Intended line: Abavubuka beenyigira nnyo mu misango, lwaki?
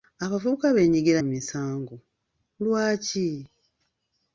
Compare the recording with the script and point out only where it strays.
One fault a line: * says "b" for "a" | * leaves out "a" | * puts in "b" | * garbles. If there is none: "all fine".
* leaves out "nnyo"